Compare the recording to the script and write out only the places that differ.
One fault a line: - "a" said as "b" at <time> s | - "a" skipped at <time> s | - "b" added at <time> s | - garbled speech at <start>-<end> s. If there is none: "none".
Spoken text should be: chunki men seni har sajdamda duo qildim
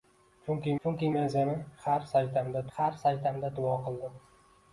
- "chunki" added at 0.8 s
- "har sajdamda" added at 2.8 s